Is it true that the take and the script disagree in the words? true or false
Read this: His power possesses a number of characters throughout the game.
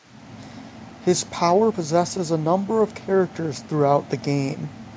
false